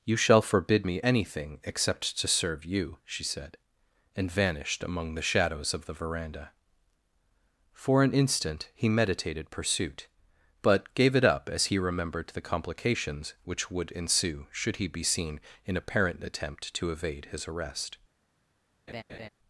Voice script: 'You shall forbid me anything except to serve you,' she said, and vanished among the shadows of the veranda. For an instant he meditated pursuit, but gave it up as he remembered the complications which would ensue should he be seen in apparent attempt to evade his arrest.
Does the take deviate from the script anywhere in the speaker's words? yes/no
no